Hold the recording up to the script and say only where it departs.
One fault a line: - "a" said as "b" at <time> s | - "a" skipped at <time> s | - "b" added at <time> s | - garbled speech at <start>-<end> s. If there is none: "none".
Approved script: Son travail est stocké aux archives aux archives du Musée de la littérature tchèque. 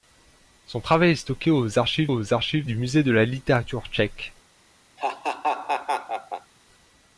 none